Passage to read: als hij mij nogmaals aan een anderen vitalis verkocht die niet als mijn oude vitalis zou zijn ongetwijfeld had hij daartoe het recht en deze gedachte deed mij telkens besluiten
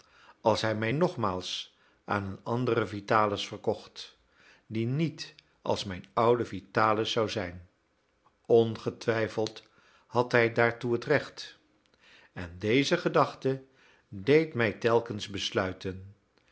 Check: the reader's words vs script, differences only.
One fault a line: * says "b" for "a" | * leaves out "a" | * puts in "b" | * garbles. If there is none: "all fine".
all fine